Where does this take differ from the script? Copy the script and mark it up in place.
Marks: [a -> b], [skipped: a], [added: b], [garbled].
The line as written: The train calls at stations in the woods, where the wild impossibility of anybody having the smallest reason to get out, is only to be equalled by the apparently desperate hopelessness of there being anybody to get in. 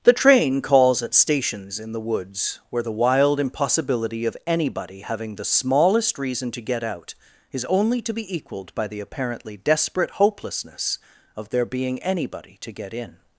The train calls at stations in the woods, where the wild impossibility of anybody having the smallest reason to get out, is only to be equalled by the apparently desperate hopelessness of there being anybody to get in.